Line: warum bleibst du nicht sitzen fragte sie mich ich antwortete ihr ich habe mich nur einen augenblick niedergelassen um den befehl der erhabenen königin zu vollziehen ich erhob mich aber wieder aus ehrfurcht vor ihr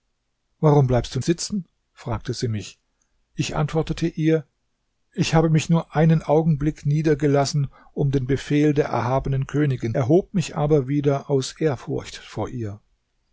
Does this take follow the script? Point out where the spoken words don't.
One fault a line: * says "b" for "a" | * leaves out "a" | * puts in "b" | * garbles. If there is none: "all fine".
* leaves out "nicht"
* leaves out "zu vollziehen ich"